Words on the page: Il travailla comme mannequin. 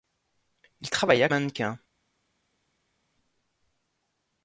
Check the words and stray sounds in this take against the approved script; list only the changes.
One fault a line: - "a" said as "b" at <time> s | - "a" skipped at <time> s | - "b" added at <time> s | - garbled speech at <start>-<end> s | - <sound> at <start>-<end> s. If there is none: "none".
- "comme" skipped at 1.3 s